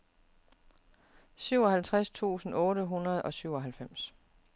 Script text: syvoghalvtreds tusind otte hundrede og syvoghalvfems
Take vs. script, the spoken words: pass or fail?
pass